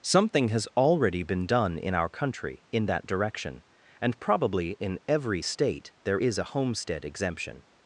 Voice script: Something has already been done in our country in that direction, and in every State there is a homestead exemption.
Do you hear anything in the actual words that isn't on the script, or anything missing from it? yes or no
yes